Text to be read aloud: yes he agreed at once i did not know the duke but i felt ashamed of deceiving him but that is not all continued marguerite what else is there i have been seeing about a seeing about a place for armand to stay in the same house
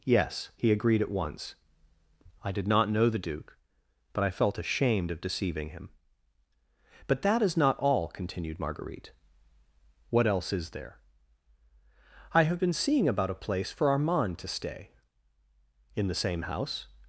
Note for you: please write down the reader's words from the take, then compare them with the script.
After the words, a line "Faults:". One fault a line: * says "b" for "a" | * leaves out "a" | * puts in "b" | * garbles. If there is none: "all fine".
yes he agreed at once i did not know the duke but i felt ashamed of deceiving him but that is not all continued marguerite what else is there i have been seeing about a place for armand to stay in the same house
Faults:
* leaves out "seeing about a"